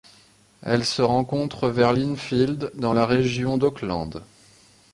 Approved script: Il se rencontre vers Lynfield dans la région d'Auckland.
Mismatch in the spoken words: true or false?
true